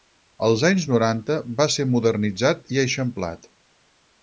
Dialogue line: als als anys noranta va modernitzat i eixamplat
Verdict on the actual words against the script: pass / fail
fail